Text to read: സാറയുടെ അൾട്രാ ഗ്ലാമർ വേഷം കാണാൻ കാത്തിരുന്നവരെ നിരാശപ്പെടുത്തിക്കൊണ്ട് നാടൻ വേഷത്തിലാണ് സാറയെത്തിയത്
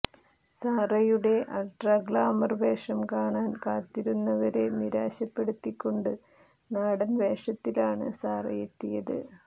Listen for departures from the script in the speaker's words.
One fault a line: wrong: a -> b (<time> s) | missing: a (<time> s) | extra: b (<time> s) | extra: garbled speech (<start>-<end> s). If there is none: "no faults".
no faults